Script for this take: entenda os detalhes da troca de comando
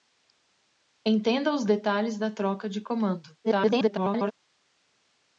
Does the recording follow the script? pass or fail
fail